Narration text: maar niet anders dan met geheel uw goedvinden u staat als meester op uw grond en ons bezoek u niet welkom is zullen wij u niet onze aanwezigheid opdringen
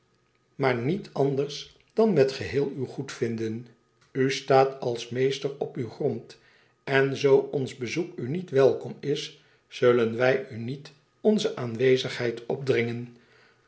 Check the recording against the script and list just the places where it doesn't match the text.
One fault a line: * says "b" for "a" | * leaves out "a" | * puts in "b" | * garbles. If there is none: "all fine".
* puts in "zoo"